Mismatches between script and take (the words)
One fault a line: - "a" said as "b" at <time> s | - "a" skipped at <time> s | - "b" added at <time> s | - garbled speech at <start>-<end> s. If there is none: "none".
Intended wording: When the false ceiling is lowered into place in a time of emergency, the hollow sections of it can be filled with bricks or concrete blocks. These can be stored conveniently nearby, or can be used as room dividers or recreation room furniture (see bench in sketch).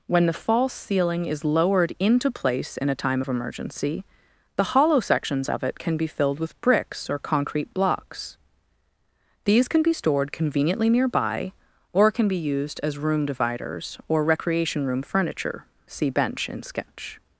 none